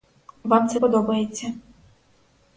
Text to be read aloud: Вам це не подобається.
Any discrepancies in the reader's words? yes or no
yes